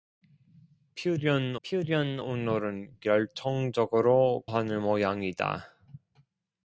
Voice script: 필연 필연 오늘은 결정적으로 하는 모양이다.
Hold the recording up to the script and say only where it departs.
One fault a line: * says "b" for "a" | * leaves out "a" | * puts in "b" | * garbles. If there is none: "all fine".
all fine